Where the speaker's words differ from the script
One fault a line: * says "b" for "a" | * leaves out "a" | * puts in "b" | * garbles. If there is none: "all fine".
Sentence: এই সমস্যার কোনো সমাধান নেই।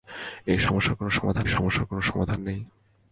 * puts in "সমস্যার কোনো সমাধান"